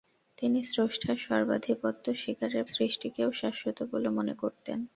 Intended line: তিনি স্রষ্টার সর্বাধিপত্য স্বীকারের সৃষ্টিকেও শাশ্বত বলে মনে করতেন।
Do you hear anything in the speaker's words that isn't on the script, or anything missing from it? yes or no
no